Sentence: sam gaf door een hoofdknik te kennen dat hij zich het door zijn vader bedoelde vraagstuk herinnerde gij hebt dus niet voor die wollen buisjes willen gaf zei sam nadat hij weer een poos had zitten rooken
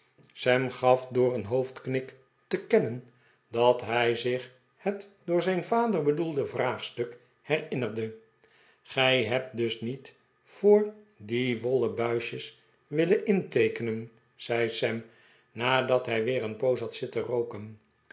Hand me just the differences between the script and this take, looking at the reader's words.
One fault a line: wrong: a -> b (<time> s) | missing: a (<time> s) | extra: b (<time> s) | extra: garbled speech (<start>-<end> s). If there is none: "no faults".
wrong: gaf -> inteekenen (13.2 s)